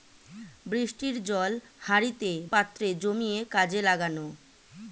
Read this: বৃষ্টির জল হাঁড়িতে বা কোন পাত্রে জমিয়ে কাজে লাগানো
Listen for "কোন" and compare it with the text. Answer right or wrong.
wrong